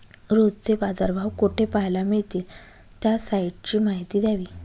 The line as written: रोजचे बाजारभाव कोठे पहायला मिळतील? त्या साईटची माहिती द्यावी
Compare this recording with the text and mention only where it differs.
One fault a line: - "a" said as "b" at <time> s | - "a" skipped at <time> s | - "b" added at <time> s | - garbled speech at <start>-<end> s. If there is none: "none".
none